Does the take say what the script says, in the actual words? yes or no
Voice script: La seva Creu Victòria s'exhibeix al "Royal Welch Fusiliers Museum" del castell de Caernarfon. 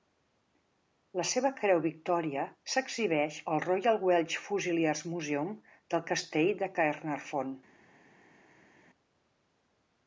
yes